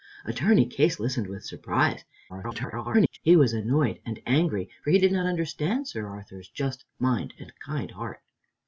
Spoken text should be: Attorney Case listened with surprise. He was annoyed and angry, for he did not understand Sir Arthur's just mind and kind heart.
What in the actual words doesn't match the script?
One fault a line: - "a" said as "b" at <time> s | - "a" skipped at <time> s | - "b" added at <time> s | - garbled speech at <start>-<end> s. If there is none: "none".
- garbled speech at 2.3-3.2 s